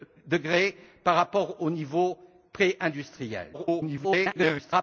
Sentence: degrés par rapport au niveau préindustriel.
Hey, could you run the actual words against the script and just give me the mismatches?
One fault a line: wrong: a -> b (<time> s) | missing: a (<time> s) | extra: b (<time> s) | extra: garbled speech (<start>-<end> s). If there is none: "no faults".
extra: garbled speech (3.5-4.8 s)